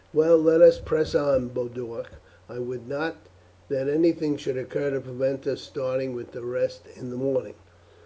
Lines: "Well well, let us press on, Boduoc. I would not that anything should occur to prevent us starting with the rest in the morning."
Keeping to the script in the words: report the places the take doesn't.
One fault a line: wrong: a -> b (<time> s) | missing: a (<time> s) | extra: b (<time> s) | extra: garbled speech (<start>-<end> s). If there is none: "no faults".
missing: well (0.4 s)